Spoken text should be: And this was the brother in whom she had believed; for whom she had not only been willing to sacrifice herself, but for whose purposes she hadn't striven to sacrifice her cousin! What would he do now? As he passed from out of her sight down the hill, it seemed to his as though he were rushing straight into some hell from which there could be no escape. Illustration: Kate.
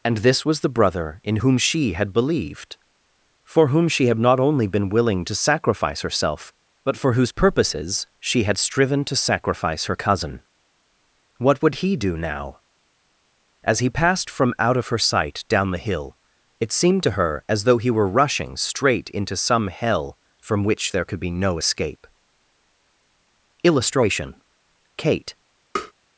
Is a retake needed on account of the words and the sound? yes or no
yes